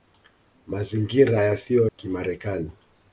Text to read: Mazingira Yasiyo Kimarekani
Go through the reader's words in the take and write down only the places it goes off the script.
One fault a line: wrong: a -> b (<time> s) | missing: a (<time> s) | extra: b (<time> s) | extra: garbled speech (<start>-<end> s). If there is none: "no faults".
no faults